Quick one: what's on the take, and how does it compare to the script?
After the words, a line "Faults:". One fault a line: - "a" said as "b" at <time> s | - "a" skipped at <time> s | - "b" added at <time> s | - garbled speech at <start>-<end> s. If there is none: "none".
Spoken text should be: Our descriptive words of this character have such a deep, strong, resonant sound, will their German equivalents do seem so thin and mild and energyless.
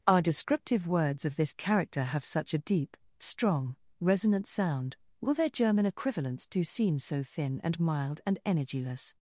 Our descriptive words of this character have such a deep, strong, resonant sound, will their German equivalents do seem so thin and mild and energyless.
Faults:
none